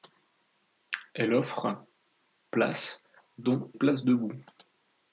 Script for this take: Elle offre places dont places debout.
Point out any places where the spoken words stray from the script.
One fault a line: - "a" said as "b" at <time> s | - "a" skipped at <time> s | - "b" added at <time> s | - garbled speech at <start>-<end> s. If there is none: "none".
none